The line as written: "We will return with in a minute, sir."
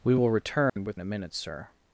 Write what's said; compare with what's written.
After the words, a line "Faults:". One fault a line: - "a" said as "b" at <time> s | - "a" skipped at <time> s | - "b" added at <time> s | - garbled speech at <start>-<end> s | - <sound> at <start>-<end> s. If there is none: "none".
"We will return with in a minute, sir."
Faults:
- dropout at 0.7-0.8 s